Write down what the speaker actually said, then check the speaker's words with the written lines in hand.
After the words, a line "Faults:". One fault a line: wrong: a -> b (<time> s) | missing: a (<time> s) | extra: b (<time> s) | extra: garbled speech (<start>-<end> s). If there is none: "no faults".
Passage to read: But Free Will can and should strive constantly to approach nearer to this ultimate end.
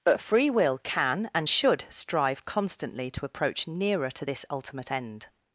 But Free Will can and should strive constantly to approach nearer to this ultimate end.
Faults:
no faults